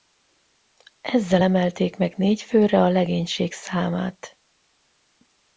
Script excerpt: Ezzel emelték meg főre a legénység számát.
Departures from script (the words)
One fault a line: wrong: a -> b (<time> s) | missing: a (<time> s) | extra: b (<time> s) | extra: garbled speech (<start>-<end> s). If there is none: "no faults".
extra: négy (2.2 s)